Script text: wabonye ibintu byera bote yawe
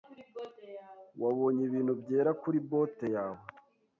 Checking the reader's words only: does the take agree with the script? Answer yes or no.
no